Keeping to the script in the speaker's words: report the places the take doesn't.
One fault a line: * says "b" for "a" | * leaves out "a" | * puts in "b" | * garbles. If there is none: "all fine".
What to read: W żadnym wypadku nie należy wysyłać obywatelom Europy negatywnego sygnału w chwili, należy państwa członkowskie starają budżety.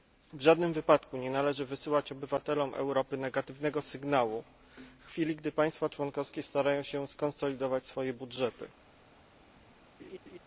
* says "gdy" for "należy"
* puts in "się skonsolidować swoje"